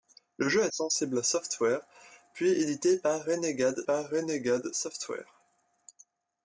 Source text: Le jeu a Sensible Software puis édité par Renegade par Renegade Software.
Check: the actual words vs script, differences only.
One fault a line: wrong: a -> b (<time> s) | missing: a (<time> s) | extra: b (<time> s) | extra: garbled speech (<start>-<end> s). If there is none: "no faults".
no faults